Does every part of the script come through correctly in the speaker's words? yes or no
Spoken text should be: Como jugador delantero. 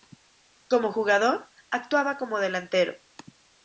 no